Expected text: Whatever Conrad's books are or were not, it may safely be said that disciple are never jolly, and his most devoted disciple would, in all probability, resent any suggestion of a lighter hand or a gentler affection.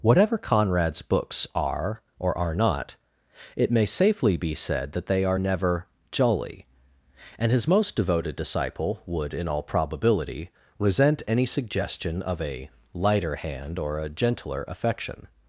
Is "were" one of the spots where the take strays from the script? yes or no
yes